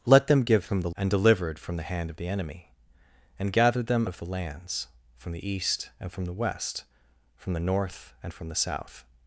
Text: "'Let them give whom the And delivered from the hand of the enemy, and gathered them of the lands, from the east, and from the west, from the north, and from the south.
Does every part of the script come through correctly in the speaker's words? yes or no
yes